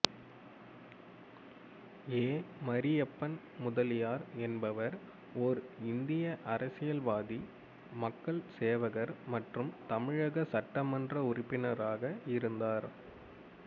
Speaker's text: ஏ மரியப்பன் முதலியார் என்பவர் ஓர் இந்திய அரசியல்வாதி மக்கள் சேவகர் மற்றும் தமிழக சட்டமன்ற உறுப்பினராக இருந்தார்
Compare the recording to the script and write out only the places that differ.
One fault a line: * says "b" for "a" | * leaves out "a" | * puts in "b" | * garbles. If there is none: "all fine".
all fine